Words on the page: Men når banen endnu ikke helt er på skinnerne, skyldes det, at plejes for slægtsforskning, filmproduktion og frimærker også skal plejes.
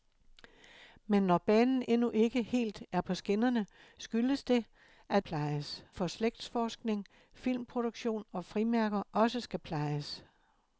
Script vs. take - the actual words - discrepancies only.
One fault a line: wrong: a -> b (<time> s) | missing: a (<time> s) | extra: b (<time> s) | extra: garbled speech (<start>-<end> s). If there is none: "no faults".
no faults